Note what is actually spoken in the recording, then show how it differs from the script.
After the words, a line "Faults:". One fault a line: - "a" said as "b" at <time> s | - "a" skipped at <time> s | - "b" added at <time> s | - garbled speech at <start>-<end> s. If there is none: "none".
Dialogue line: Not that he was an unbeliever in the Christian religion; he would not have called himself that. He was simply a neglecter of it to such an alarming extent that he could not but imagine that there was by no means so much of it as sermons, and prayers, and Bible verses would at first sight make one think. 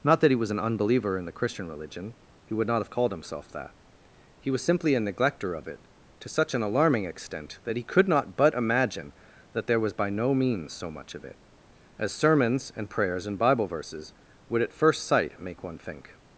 Not that he was an unbeliever in the Christian religion; he would not have called himself that. He was simply a neglecter of it to such an alarming extent that he could not but imagine that there was by no means so much of it as sermons, and prayers, and Bible verses would at first sight make one think.
Faults:
none